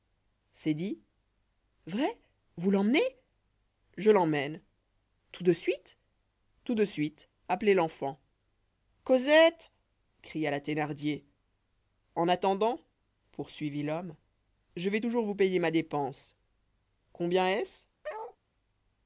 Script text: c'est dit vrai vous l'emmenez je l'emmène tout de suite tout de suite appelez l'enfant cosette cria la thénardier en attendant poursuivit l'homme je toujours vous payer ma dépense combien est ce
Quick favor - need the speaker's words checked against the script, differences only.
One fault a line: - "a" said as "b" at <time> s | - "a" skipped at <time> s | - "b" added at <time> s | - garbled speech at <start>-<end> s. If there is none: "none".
- "vais" added at 14.9 s